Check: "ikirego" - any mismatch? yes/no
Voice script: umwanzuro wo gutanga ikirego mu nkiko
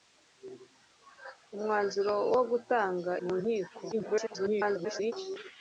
yes